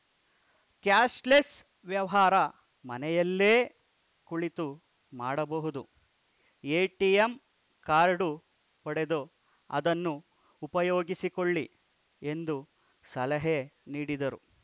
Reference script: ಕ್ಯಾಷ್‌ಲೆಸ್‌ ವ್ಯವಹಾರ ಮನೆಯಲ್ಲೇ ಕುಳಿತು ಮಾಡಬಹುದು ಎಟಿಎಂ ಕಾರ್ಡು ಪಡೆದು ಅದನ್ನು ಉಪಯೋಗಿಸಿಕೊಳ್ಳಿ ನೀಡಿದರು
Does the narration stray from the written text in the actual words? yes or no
yes